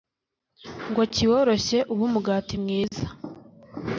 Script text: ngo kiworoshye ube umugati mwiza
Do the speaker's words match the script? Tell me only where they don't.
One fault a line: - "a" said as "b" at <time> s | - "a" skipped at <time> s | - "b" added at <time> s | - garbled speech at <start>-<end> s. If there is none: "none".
none